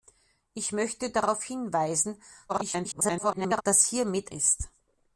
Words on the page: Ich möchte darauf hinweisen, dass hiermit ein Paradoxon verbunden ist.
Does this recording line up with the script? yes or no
no